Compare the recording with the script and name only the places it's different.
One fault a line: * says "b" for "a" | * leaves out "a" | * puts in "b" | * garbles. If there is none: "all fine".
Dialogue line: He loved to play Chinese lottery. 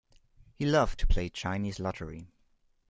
all fine